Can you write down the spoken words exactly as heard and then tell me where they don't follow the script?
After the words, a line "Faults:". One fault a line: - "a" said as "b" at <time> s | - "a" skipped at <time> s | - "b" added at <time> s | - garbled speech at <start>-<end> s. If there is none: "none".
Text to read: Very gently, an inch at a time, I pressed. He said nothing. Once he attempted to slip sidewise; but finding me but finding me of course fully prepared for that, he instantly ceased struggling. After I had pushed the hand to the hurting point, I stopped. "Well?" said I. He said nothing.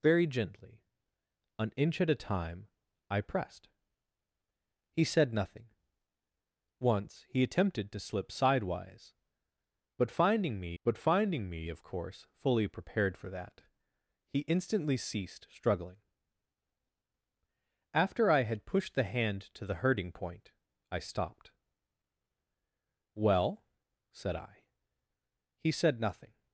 Very gently, an inch at a time, I pressed. He said nothing. Once he attempted to slip sidewise; but finding me but finding me of course fully prepared for that, he instantly ceased struggling. After I had pushed the hand to the hurting point, I stopped. "Well?" said I. He said nothing.
Faults:
none